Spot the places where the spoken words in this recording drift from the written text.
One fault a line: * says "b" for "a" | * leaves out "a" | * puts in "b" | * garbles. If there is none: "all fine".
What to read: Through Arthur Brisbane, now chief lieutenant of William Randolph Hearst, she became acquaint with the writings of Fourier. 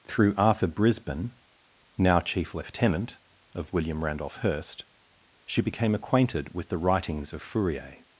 * says "acquainted" for "acquaint"